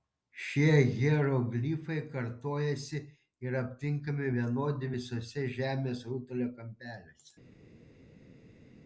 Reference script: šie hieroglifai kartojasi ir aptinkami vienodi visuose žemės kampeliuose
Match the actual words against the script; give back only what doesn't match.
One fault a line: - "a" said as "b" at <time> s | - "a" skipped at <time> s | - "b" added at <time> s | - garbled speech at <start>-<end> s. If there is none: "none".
- "rutulio" added at 6.1 s